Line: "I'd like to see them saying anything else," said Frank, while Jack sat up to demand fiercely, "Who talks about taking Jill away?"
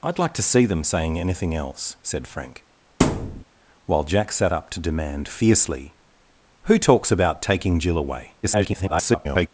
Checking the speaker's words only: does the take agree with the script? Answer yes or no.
no